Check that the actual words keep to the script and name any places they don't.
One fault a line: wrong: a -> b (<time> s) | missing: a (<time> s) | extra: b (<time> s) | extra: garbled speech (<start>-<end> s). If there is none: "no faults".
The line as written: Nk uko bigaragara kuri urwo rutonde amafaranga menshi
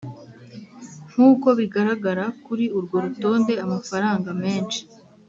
no faults